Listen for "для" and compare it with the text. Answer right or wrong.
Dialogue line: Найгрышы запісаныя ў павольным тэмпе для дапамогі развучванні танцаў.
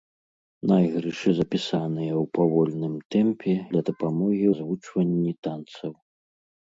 right